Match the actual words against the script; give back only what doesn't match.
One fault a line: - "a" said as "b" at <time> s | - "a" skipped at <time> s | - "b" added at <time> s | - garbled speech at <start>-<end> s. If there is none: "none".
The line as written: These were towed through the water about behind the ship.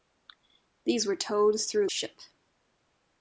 - "water about behind" skipped at 1.9 s